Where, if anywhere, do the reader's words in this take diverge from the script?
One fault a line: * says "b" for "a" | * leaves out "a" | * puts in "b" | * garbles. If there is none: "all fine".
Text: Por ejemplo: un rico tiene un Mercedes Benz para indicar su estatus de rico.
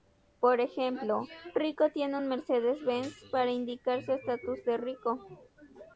* leaves out "un"